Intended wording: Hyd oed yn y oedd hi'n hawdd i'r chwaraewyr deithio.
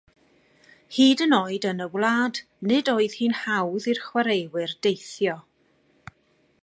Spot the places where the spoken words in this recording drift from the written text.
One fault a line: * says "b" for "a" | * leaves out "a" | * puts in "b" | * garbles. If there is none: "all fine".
* puts in "yn"
* puts in "wlad nid"